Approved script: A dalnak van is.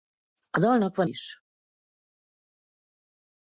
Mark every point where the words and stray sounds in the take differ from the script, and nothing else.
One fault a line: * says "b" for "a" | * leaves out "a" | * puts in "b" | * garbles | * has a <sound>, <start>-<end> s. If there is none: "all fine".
all fine